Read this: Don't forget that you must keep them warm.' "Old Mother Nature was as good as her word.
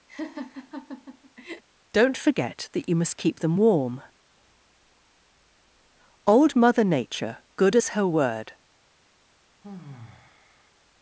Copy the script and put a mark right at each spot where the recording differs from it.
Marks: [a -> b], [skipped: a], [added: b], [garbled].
Don't forget that you must keep them warm.' "Old Mother Nature [skipped: was as] good as her word.